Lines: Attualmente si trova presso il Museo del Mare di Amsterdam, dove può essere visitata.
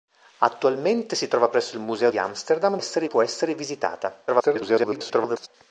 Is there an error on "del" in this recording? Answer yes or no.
yes